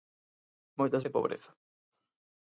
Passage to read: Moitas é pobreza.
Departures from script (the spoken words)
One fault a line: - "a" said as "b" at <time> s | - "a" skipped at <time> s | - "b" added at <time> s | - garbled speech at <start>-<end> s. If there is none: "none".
none